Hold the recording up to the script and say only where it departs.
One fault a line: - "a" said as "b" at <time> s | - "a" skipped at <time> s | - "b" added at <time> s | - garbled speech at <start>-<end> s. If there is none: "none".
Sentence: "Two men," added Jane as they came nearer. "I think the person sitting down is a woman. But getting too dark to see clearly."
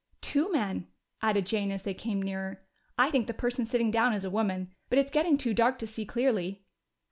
- "it's" added at 5.0 s